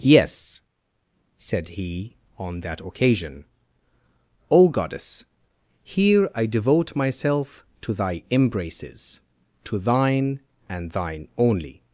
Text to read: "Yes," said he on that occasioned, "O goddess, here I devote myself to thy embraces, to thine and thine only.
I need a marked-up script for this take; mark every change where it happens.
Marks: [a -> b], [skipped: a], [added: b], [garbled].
"Yes," said he on that [occasioned, -> occasion] "O goddess, here I devote myself to thy embraces, to thine and thine only.